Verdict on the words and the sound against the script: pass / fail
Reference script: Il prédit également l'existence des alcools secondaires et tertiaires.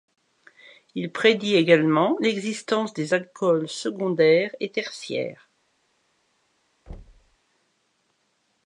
fail